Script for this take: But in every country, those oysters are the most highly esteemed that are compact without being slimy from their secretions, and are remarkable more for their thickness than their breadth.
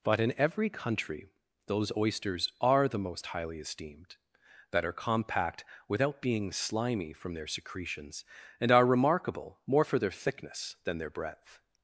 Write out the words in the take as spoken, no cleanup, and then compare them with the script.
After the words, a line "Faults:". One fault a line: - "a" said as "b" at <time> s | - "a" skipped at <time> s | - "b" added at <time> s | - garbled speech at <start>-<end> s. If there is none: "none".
But in every country, those oysters are the most highly esteemed that are compact without being slimy from their secretions, and are remarkable more for their thickness than their breadth.
Faults:
none